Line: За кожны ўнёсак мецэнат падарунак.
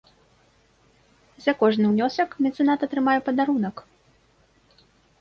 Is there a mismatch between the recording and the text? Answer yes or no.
yes